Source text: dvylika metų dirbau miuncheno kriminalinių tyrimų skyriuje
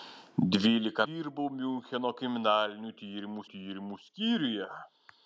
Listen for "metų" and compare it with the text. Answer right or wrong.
wrong